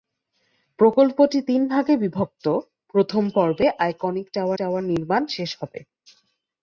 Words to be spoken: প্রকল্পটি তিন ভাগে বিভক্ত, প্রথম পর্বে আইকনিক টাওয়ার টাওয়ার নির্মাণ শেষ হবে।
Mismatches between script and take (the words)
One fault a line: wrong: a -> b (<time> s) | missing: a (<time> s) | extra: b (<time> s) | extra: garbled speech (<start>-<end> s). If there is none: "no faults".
no faults